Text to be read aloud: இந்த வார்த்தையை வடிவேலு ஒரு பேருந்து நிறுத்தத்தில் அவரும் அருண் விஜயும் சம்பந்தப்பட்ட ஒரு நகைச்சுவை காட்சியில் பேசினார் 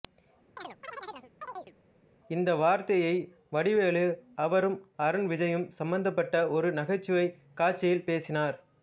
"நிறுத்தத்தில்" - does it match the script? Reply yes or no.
no